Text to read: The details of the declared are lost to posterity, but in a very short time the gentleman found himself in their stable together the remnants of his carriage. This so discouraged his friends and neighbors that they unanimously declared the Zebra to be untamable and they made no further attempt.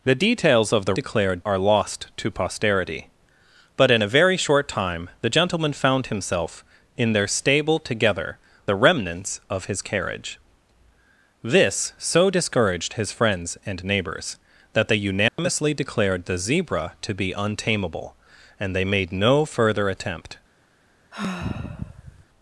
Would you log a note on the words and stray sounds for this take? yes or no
yes